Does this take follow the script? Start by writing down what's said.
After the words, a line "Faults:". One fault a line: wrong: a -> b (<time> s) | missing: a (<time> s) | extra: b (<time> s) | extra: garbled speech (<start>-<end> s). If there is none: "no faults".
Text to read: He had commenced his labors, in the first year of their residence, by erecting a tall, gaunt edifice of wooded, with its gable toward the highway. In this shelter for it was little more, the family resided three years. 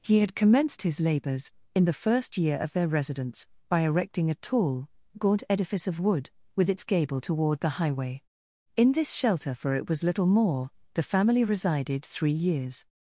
He had commenced his labors, in the first year of their residence, by erecting a tall, gaunt edifice of wood, with its gable toward the highway. In this shelter for it was little more, the family resided three years.
Faults:
wrong: wooded -> wood (6.0 s)